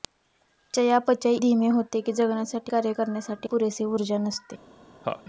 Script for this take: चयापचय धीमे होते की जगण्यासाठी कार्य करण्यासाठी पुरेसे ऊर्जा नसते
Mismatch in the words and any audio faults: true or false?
true